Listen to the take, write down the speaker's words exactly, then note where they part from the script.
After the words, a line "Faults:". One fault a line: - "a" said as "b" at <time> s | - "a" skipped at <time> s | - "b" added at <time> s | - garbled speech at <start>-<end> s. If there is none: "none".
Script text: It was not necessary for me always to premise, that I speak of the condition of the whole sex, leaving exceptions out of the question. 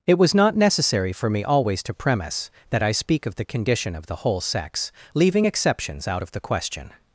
It was not necessary for me always to premise, that I speak of the condition of the whole sex, leaving exceptions out of the question.
Faults:
none